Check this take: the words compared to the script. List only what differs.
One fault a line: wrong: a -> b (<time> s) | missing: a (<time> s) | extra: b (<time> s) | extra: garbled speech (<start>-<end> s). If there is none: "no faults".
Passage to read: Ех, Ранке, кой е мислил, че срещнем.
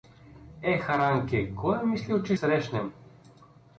no faults